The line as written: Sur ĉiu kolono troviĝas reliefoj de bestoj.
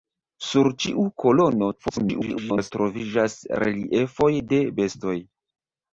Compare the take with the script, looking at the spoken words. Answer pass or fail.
fail